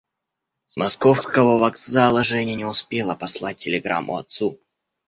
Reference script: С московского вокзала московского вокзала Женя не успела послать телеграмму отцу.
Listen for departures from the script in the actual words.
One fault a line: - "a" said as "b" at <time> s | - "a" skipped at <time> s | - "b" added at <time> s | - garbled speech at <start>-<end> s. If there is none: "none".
- "московского вокзала" skipped at 2.2 s